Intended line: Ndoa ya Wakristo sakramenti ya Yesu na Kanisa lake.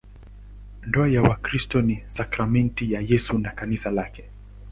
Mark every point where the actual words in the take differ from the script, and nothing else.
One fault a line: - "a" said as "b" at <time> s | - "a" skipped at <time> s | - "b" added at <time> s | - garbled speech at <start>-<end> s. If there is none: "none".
- "ni" added at 1.8 s